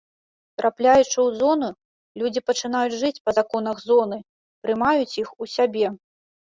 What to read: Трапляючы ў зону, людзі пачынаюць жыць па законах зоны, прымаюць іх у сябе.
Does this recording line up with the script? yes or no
yes